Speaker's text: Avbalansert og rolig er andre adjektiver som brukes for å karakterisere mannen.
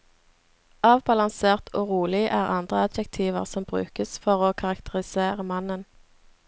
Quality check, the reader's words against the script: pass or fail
pass